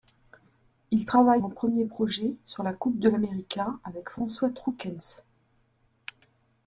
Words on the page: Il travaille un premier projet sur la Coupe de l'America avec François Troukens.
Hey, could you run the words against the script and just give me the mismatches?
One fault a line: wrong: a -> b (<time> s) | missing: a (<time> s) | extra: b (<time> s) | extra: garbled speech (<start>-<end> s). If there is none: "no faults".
no faults